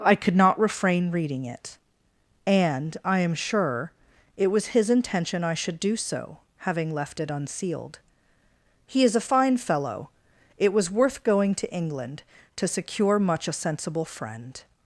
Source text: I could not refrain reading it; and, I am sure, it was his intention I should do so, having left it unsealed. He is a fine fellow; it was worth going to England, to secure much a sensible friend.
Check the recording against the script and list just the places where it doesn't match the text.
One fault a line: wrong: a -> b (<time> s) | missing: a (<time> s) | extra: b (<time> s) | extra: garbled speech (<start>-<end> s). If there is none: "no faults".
no faults